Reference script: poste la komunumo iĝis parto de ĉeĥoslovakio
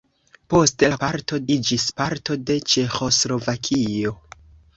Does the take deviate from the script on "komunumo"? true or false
true